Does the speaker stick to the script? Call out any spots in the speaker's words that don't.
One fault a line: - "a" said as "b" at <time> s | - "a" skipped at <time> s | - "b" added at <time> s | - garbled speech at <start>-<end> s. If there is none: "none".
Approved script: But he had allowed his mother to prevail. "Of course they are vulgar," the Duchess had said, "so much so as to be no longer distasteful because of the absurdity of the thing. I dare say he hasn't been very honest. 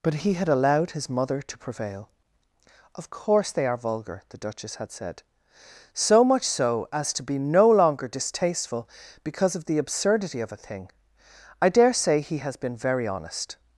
- "the" said as "a" at 10.5 s
- "hasn't" said as "has" at 12.4 s